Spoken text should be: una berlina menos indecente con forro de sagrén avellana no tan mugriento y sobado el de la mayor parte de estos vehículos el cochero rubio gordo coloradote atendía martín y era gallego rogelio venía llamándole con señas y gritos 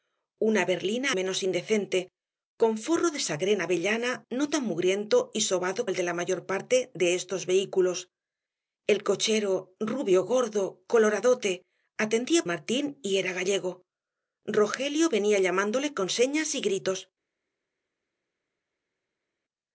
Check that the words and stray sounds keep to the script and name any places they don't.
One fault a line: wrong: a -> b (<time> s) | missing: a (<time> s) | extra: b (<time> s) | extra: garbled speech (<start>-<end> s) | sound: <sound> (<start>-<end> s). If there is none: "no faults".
no faults